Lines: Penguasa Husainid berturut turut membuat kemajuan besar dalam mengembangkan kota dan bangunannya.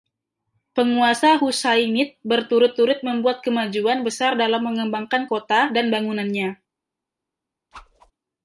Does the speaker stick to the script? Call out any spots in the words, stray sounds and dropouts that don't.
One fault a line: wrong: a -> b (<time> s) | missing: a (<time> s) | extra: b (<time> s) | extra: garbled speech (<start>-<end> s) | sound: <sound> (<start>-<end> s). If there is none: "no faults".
sound: whoosh (7.7-8.1 s)